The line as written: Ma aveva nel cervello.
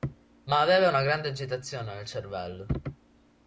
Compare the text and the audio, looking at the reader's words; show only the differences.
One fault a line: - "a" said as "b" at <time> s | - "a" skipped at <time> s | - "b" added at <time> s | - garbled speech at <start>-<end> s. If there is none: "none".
- "una grande agitazione" added at 0.9 s